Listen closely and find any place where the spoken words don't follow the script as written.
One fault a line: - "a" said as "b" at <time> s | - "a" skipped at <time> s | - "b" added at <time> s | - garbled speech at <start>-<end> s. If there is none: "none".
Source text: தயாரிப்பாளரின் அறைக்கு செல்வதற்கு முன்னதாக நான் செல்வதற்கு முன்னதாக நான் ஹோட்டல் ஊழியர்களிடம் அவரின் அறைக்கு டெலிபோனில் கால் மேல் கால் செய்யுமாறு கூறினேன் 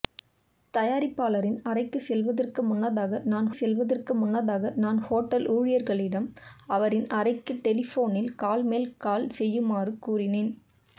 none